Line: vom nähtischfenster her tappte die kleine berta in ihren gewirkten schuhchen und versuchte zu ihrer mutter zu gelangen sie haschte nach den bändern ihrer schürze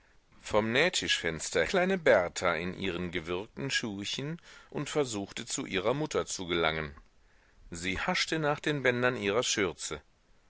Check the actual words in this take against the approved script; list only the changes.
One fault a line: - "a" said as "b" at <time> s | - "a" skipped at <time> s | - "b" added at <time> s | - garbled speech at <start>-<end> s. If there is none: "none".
- "her tappte die" skipped at 1.6 s